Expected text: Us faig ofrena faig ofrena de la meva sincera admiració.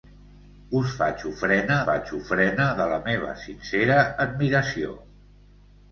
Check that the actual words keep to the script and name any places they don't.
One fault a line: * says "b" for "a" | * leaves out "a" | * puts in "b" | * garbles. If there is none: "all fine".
all fine